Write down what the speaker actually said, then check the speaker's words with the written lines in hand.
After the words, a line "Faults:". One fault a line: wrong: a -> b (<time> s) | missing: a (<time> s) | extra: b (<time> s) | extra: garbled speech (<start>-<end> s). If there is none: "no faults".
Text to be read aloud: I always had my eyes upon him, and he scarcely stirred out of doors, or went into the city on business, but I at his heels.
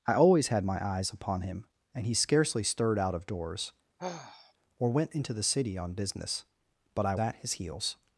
I always had my eyes upon him, and he scarcely stirred out of doors, or went into the city on business, but I at his heels.
Faults:
no faults